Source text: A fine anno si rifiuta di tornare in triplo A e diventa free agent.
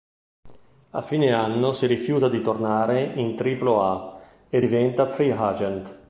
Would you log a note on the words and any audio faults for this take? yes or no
no